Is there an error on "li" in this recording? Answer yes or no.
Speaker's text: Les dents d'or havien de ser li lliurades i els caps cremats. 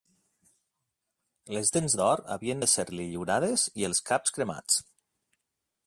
no